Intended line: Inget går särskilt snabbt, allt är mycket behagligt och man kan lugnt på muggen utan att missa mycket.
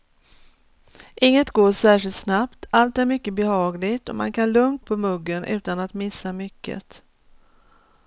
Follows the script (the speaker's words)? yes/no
yes